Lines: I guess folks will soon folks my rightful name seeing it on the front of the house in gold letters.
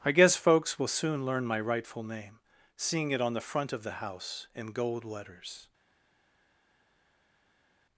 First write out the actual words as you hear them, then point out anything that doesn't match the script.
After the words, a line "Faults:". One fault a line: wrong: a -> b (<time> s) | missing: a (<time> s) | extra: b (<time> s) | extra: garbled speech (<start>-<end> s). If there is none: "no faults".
I guess folks will soon learn my rightful name seeing it on the front of the house in gold letters.
Faults:
wrong: folks -> learn (1.3 s)